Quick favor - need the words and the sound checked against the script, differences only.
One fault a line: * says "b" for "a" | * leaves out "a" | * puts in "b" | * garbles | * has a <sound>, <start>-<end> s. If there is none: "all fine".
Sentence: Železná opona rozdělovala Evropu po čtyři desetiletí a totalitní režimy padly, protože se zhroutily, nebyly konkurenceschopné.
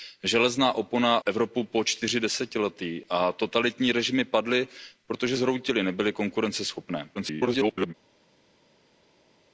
* leaves out "rozdělovala"
* leaves out "se"
* garbles